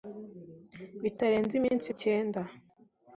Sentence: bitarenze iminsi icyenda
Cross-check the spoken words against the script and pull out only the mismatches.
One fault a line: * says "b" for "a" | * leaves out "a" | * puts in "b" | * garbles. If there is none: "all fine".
all fine